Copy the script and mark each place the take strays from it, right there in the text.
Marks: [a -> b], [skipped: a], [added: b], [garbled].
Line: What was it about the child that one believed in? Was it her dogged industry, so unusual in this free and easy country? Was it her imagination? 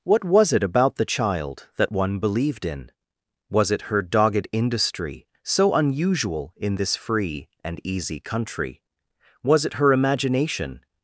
What was it about the child that one believed in? Was it her dogged industry, so unusual in this free and easy country? Was it her imagination?